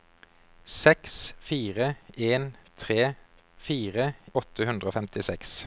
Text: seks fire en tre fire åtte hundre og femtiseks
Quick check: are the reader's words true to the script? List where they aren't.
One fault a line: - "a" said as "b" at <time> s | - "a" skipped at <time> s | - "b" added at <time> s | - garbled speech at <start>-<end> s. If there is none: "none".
none